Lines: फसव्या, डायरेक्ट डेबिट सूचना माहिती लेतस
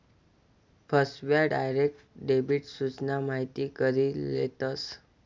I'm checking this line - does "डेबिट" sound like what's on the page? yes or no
yes